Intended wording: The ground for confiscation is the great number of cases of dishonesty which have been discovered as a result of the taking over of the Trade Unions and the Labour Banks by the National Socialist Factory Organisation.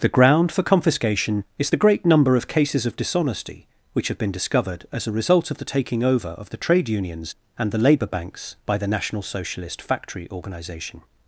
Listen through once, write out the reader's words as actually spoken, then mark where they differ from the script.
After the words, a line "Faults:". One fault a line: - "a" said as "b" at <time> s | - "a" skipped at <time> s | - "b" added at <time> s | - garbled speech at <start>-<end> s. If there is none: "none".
The ground for confiscation is the great number of cases of dishonesty which have been discovered as a result of the taking over of the Trade Unions and the Labour Banks by the National Socialist Factory Organisation.
Faults:
none